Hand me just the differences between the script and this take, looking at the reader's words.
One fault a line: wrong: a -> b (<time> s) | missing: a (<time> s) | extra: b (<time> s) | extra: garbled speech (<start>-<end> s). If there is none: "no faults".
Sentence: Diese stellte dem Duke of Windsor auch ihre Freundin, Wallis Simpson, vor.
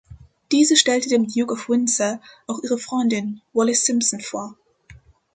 no faults